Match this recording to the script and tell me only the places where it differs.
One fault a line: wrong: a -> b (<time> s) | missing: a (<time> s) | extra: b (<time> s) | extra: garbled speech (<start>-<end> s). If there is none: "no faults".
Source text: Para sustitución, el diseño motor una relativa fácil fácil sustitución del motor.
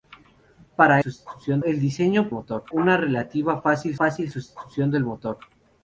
no faults